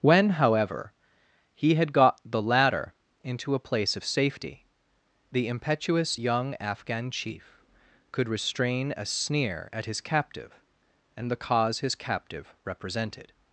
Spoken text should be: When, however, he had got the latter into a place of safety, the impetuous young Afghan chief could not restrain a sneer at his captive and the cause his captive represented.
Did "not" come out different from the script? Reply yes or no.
yes